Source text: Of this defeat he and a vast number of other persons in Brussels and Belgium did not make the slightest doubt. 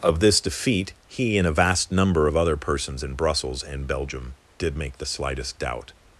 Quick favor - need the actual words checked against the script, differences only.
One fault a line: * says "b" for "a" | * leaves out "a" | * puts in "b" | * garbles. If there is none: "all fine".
* leaves out "not"